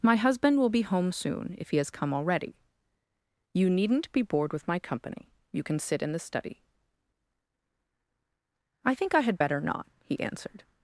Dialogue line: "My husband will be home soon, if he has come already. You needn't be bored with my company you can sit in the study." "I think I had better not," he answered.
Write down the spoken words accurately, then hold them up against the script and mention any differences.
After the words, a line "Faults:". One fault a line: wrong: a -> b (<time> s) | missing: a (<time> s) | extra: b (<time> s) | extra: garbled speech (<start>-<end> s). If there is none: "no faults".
"My husband will be home soon, if he has come already. You needn't be bored with my company you can sit in the study." "I think I had better not," he answered.
Faults:
no faults